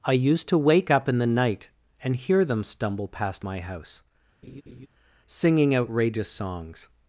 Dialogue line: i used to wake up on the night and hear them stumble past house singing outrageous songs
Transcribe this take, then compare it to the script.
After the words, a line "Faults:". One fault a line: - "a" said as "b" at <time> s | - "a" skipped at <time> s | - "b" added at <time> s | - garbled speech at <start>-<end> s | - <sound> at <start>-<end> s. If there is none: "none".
i used to wake up in the night and hear them stumble past my house singing outrageous songs
Faults:
- "on" said as "in" at 1.1 s
- "my" added at 3.4 s
- laugh at 4.4-4.9 s